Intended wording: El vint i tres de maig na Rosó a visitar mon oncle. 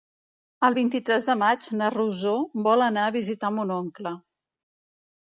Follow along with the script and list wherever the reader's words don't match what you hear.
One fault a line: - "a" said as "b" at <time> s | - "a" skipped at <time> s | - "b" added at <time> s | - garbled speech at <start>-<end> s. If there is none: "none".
- "vol anar" added at 2.7 s